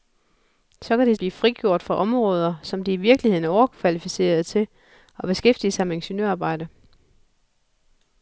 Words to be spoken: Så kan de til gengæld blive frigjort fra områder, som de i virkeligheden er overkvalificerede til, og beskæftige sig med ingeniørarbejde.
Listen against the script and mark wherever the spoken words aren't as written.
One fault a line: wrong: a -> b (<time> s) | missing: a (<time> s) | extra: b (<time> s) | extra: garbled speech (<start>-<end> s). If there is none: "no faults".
missing: til gengæld (1.1 s)